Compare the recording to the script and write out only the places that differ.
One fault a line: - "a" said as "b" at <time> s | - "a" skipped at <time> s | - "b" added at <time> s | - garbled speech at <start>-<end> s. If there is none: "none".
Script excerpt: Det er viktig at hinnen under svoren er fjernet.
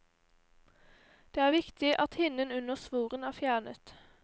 none